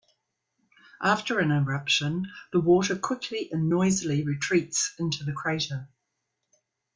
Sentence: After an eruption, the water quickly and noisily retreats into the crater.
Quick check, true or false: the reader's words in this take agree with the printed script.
true